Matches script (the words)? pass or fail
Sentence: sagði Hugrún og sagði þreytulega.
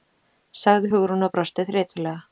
fail